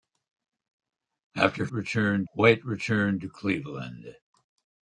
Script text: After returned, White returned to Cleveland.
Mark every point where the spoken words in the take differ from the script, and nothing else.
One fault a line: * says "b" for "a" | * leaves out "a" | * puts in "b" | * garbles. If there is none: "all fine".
all fine